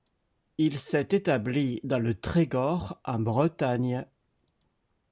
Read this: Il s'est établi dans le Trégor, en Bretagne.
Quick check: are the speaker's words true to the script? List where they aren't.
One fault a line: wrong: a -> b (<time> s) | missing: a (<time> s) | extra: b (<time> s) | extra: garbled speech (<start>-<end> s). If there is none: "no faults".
no faults